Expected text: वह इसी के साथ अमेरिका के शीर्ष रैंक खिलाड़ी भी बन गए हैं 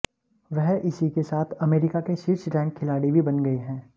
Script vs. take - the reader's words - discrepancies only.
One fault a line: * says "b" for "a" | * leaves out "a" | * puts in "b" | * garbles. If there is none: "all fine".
all fine